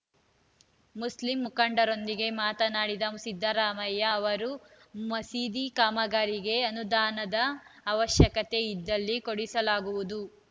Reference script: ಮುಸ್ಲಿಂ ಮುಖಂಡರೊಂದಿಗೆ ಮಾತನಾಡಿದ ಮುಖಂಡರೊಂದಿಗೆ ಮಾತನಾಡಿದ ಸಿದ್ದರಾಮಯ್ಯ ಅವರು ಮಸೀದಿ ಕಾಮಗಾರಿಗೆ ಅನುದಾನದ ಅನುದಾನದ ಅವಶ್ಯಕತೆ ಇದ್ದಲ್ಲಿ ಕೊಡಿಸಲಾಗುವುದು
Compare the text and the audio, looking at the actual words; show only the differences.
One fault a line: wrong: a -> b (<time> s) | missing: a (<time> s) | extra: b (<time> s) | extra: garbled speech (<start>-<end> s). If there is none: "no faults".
missing: ಮುಖಂಡರೊಂದಿಗೆ ಮಾತನಾಡಿದ (3.0 s)
missing: ಅನುದಾನದ (7.4 s)